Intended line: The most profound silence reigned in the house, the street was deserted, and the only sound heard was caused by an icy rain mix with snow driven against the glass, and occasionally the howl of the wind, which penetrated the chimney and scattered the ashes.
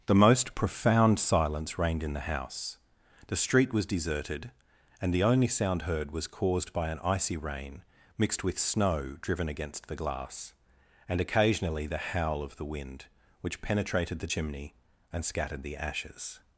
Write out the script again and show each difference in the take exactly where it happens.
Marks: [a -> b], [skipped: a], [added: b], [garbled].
The most profound silence reigned in the house, the street was deserted, and the only sound heard was caused by an icy rain [mix -> mixed] with snow driven against the glass, and occasionally the howl of the wind, which penetrated the chimney and scattered the ashes.